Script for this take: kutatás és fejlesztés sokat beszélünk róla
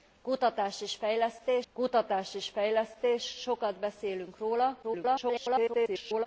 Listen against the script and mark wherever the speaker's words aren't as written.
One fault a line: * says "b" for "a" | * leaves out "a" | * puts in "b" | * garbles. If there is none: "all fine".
* puts in "kutatás és fejlesztés"
* garbles